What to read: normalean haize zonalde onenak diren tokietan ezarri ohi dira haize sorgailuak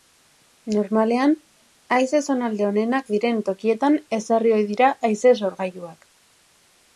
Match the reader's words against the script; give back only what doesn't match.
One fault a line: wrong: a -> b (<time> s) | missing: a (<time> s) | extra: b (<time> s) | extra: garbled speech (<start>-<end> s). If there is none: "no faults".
no faults